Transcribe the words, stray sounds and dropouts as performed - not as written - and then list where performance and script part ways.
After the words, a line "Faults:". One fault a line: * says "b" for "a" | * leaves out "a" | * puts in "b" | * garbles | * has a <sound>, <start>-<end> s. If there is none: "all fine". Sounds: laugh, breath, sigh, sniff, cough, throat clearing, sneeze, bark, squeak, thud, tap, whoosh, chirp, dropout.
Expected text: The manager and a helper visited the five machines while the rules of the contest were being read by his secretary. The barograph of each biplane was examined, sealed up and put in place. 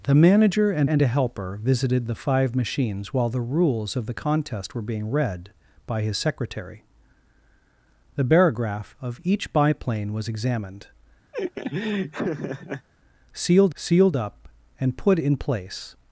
The manager and and a helper visited the five machines while the rules of the contest were being read by his secretary. The barograph of each biplane was examined, sealed sealed up and put in place.
Faults:
* puts in "and"
* has a laugh, 11.3-12.9 s
* puts in "sealed"